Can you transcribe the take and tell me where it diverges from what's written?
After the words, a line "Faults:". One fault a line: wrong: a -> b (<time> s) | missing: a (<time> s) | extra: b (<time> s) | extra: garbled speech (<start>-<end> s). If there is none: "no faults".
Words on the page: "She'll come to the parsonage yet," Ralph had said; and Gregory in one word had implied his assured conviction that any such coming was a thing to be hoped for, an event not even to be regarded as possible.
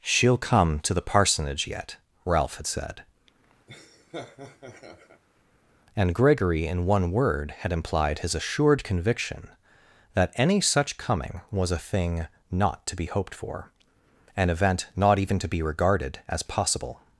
"She'll come to the parsonage yet," Ralph had said; and Gregory in one word had implied his assured conviction that any such coming was a thing not to be hoped for, an event not even to be regarded as possible.
Faults:
extra: not (12.5 s)